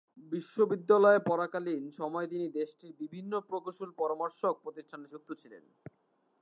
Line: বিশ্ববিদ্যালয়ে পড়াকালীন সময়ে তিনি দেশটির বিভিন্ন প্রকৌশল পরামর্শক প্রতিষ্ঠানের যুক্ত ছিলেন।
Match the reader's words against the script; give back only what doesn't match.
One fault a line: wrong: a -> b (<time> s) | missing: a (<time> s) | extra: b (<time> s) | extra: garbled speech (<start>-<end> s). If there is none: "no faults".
no faults